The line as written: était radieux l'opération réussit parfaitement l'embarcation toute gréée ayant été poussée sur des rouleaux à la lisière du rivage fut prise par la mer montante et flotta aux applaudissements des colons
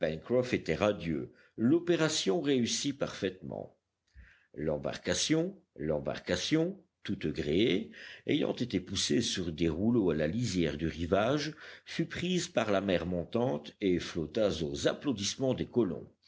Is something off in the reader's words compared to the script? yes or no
yes